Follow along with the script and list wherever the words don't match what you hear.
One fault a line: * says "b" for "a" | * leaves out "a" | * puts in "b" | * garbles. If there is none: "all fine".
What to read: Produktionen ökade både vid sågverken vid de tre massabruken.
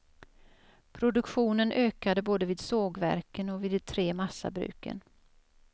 * puts in "och"